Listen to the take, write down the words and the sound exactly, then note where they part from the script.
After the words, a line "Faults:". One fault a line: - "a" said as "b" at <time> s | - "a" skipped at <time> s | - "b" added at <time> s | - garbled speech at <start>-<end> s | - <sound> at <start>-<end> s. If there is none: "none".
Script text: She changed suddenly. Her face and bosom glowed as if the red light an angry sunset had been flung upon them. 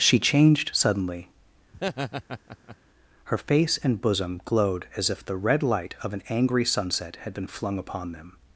She changed suddenly. Her face and bosom glowed as if the red light of an angry sunset had been flung upon them.
Faults:
- laugh at 1.7-2.8 s
- "of" added at 6.0 s